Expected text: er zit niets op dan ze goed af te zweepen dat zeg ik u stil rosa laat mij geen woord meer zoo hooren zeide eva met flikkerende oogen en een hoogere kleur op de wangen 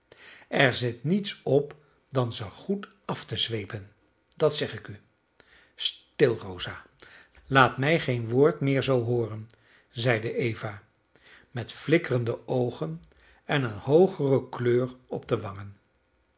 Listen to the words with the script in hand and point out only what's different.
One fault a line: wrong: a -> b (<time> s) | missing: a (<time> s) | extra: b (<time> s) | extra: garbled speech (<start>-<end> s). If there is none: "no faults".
no faults